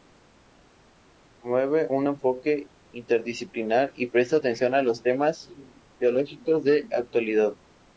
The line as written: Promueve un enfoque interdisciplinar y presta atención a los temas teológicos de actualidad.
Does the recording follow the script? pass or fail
pass